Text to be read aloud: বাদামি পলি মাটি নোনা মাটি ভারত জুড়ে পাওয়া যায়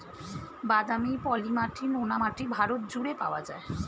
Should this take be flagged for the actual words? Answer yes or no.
no